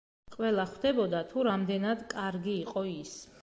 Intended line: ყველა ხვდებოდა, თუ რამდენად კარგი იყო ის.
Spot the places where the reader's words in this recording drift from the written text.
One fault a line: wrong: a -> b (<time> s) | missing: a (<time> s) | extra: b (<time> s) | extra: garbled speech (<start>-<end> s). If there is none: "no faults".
no faults